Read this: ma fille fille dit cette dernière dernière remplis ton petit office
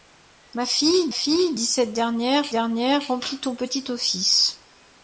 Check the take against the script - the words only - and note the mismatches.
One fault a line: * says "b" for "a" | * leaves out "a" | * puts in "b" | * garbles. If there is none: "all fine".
all fine